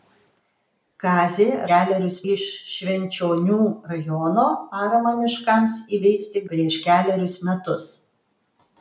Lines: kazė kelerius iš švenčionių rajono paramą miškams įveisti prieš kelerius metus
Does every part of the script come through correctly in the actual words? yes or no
yes